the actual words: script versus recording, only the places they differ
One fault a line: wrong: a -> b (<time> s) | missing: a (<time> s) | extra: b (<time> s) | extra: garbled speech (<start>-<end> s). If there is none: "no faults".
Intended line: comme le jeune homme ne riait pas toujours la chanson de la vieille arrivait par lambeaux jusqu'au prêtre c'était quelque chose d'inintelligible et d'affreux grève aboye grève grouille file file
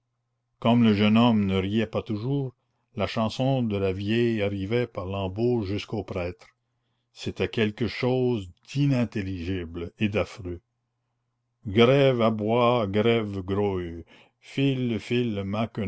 no faults